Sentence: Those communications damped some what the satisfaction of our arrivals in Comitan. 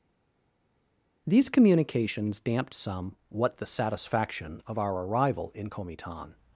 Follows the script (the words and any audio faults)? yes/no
no